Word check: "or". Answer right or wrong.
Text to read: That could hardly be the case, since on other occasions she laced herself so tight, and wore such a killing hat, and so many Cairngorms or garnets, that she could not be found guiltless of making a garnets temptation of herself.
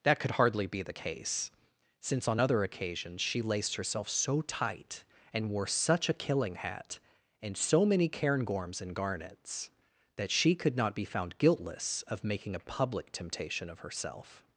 wrong